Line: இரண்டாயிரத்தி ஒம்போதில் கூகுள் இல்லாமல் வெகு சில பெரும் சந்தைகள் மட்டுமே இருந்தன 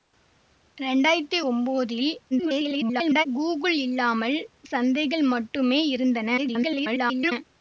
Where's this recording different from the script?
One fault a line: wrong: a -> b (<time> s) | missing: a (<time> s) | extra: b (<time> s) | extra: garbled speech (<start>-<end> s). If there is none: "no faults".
extra: garbled speech (2.3-3.3 s)
missing: வெகு சில பெரும் (4.4 s)
extra: garbled speech (6.4-7.3 s)